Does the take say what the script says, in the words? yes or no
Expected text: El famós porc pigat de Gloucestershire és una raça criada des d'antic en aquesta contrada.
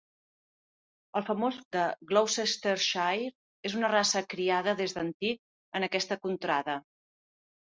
no